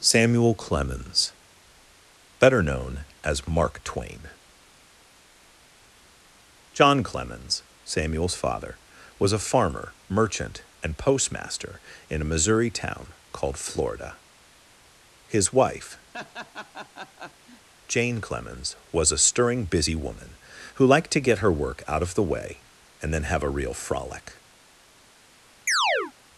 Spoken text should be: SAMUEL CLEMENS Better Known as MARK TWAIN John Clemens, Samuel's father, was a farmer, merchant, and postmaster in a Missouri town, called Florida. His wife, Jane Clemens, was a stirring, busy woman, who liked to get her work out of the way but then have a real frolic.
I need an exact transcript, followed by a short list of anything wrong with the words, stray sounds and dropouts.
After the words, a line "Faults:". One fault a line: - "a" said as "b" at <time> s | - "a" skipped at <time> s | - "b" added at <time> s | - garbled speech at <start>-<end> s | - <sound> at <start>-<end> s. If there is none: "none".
SAMUEL CLEMENS Better Known as MARK TWAIN John Clemens, Samuel's father, was a farmer, merchant, and postmaster in a Missouri town, called Florida. His wife, Jane Clemens, was a stirring, busy woman, who liked to get her work out of the way and then have a real frolic.
Faults:
- laugh at 16.1-17.7 s
- "but" said as "and" at 23.0 s
- chirp at 25.7-26.1 s